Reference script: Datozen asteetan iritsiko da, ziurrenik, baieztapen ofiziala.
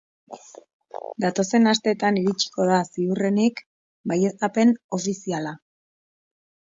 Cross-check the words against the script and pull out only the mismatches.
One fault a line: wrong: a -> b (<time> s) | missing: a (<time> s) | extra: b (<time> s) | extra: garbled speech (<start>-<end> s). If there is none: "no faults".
no faults